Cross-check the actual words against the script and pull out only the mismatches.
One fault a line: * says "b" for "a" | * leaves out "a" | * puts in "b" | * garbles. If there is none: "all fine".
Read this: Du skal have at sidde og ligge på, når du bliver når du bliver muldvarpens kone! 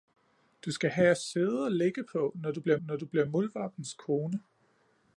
all fine